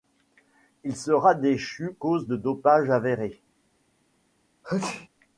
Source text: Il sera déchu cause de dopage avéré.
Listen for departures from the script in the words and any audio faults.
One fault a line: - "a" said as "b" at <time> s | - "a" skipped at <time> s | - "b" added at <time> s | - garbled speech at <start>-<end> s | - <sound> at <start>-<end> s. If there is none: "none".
- sneeze at 4.6-5.1 s